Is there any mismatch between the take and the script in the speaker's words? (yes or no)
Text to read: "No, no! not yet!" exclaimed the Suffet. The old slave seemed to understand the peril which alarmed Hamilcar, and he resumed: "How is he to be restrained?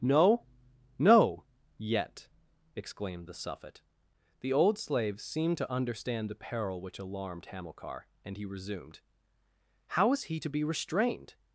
yes